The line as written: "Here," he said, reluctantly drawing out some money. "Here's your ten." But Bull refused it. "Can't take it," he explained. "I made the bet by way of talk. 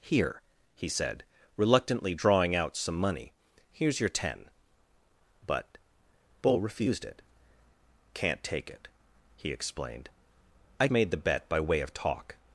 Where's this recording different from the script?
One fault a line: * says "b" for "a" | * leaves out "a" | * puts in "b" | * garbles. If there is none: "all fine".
all fine